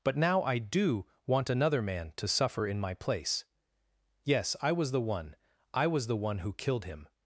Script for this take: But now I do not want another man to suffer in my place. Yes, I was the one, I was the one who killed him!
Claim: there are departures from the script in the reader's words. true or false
true